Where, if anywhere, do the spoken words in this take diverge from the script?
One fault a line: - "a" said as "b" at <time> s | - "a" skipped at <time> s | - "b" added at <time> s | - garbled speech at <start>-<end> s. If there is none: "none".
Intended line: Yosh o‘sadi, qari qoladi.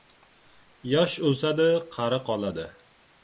none